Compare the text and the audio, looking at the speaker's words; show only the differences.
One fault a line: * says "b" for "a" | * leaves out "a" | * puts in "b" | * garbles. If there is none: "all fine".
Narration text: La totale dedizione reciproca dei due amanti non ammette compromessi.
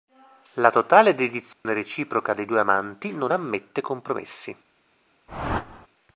all fine